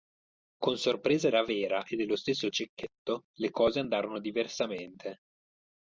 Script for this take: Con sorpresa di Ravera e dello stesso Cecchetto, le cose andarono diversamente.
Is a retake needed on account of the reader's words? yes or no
yes